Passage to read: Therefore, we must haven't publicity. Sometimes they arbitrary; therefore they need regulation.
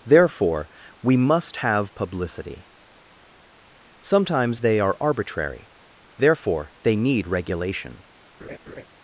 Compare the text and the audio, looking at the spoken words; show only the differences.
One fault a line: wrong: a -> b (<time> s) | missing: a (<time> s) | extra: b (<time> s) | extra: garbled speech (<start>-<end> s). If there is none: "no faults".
wrong: haven't -> have (1.6 s)
extra: are (4.8 s)